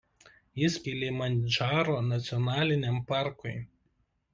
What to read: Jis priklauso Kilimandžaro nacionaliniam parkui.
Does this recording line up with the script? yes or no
no